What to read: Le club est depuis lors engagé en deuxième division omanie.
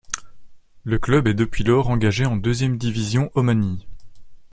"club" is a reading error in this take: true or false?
false